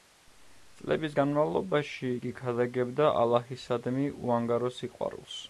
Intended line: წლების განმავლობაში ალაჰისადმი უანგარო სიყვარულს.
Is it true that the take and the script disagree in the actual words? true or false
true